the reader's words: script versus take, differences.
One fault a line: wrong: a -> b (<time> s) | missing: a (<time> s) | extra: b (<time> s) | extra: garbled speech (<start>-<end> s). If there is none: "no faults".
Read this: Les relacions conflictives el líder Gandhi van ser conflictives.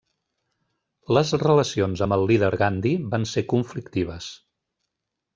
wrong: conflictives -> amb (2.0 s)